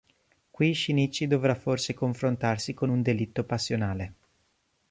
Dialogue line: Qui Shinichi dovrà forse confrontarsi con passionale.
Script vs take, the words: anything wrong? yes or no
yes